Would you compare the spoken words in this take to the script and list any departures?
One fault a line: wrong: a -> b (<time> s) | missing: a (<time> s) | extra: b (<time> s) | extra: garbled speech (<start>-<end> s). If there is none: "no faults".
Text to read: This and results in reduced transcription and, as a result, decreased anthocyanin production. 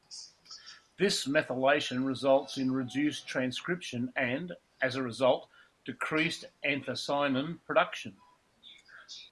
wrong: and -> methylation (1.3 s)